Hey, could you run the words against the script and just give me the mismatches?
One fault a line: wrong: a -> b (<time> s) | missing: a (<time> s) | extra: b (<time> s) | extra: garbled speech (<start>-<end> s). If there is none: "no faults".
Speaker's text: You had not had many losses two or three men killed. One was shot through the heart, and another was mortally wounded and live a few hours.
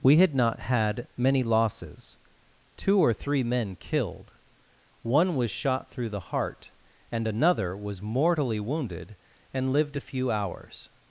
wrong: You -> We (0.0 s)
wrong: live -> lived (9.7 s)